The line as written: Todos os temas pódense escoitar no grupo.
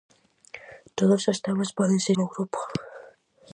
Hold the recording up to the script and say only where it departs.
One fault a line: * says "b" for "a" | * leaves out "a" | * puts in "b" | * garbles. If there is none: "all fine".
* leaves out "escoitar"